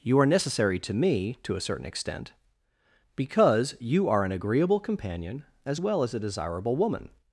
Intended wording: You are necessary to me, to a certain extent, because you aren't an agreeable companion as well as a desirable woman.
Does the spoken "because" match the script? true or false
true